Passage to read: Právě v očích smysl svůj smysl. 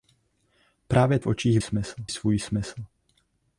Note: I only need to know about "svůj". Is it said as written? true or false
true